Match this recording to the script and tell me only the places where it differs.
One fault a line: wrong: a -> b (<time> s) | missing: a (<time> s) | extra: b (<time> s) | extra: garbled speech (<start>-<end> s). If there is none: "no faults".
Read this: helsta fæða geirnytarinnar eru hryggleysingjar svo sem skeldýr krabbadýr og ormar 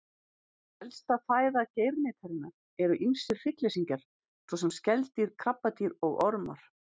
extra: ýmsir (3.1 s)